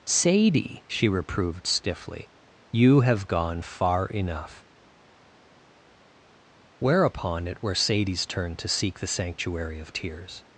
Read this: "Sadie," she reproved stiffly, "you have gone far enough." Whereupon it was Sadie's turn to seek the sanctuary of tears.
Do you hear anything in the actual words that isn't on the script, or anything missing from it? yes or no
yes